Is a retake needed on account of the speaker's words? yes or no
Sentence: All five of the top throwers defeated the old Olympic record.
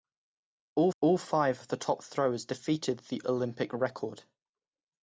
yes